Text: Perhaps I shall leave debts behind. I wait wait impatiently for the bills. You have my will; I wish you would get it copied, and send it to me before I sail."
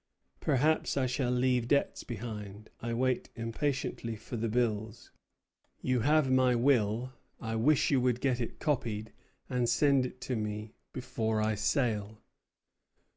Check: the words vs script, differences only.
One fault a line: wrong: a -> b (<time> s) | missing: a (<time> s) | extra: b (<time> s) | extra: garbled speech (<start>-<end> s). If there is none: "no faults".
missing: wait (3.3 s)